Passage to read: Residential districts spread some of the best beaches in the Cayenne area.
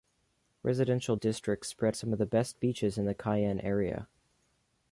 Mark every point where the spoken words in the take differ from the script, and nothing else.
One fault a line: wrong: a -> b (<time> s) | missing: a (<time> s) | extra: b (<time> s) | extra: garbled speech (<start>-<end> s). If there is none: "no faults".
no faults